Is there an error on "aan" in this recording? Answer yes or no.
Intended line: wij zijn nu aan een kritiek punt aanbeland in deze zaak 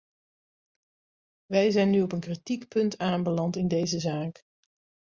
yes